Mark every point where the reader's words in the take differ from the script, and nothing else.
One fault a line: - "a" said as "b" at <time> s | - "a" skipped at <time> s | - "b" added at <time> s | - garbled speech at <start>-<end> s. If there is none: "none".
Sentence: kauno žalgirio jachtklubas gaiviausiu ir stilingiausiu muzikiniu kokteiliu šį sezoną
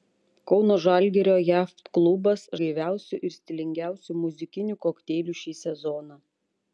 none